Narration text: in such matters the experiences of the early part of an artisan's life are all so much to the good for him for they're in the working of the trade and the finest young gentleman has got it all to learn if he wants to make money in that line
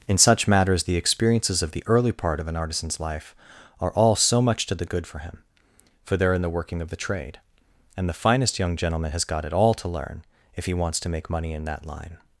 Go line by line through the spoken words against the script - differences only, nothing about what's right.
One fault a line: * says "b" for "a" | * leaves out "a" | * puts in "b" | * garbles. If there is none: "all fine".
all fine